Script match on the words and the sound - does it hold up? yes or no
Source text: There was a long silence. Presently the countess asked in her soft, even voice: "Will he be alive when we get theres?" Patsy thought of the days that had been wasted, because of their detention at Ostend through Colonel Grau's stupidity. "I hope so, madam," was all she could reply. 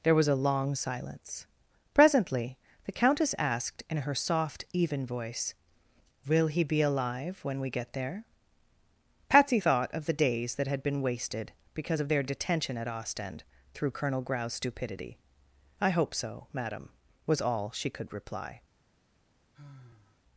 no